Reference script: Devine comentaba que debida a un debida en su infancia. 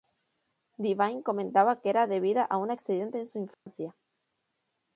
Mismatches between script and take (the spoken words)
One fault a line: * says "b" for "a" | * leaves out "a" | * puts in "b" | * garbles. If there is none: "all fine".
* puts in "era"
* says "accidente" for "debida"